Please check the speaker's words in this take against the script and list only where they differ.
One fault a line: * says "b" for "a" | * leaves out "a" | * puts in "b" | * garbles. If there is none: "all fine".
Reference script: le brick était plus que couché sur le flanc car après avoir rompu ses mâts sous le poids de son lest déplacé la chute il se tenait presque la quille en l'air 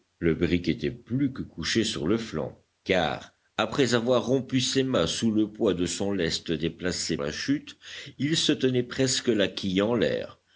all fine